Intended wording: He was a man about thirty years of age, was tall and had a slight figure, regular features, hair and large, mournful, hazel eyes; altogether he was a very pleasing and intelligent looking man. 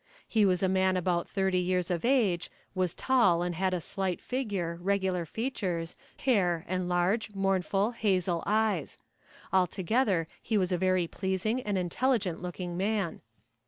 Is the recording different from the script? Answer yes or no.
no